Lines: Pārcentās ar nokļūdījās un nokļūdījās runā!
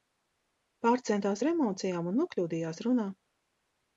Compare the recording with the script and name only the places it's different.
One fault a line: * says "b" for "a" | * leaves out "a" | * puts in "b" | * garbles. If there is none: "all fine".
* says "emocijām" for "nokļūdījās"